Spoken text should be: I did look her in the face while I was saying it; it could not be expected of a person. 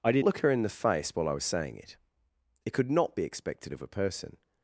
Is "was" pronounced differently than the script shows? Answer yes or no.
no